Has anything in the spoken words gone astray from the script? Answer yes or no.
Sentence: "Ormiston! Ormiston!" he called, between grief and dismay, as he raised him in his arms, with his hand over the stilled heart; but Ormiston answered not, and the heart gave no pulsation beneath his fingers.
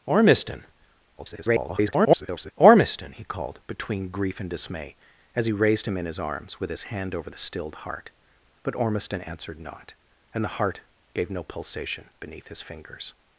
yes